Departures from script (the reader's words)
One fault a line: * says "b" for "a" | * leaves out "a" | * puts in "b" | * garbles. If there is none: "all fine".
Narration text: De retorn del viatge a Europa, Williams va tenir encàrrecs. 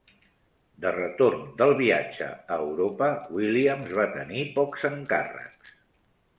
* puts in "pocs"